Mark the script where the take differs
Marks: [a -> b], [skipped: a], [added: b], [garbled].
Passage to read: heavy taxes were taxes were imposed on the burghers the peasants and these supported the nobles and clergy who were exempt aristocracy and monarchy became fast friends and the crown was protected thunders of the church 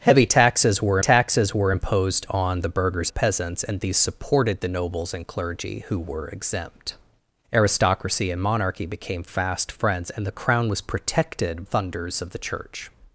heavy taxes were taxes were imposed on the burghers the peasants and these supported the nobles and clergy who were exempt aristocracy and monarchy became fast friends and the crown was protected thunders of the church